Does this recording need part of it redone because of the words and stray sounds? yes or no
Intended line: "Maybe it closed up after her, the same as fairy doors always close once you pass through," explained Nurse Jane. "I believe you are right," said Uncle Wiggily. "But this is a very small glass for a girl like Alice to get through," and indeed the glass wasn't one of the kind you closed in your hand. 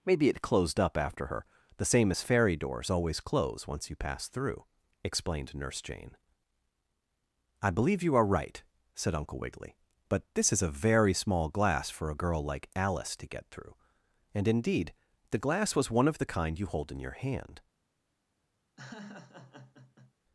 yes